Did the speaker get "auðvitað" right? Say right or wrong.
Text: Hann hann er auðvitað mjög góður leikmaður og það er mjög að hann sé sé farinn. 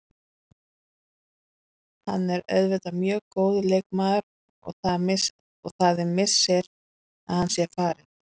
right